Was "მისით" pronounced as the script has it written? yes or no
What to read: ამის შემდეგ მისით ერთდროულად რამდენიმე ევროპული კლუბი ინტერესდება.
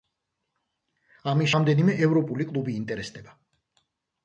no